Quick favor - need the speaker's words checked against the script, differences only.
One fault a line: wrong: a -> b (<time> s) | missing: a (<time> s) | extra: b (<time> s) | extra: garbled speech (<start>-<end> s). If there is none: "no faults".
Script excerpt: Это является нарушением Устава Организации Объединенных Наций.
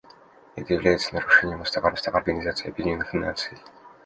extra: Устава (1.9 s)